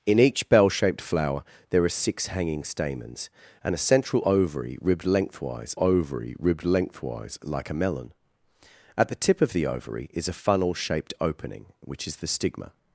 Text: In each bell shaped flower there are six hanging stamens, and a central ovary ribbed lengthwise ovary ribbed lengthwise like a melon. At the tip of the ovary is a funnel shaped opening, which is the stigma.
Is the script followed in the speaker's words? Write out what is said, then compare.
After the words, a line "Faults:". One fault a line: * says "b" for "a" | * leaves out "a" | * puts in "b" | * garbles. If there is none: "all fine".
In each bell shaped flower there are six hanging stamens, and a central ovary ribbed lengthwise ovary ribbed lengthwise like a melon. At the tip of the ovary is a funnel shaped opening, which is the stigma.
Faults:
all fine